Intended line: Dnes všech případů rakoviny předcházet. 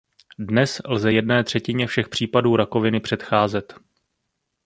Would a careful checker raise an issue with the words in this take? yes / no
yes